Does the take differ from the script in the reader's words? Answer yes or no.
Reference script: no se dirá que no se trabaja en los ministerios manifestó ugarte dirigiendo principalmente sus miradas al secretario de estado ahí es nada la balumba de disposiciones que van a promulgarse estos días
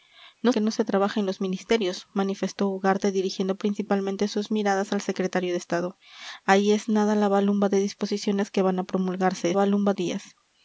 yes